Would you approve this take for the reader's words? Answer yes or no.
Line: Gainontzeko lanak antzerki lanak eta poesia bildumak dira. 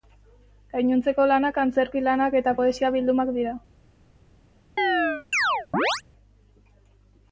yes